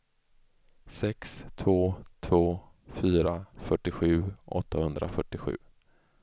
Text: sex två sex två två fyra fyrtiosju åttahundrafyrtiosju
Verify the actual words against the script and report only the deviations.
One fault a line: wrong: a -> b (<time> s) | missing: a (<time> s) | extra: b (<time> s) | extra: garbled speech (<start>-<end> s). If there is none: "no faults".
missing: sex två (1.9 s)